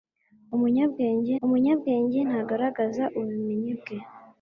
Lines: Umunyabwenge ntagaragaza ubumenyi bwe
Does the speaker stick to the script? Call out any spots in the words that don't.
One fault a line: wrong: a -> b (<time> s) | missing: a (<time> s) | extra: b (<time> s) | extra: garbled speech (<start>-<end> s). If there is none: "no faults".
extra: umunyabwenge (1.4 s)